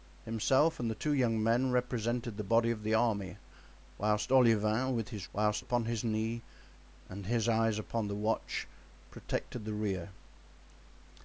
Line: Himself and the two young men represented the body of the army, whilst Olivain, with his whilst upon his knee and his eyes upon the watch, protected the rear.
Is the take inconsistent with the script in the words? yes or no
no